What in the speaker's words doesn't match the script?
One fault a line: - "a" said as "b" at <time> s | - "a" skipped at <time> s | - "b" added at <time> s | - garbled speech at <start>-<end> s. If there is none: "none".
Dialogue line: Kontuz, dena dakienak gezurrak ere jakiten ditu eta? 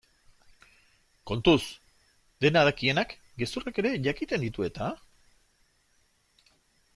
none